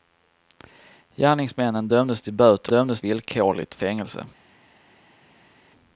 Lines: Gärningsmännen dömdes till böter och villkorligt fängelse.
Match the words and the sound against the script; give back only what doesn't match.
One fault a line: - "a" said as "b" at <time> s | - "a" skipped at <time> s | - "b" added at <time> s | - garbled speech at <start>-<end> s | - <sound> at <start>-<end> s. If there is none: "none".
- "och" said as "dömdes" at 2.7 s